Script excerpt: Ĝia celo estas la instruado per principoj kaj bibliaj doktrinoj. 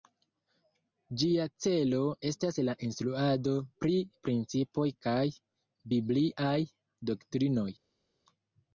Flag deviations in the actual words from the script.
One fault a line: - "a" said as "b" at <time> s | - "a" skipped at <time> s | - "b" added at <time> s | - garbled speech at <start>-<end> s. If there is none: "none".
- "per" said as "pri" at 3.9 s